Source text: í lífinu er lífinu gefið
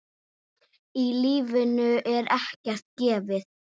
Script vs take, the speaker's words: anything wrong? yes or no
yes